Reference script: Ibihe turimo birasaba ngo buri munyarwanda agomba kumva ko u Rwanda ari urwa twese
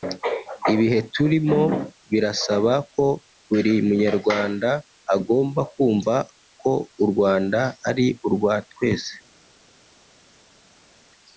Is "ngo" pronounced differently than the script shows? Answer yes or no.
yes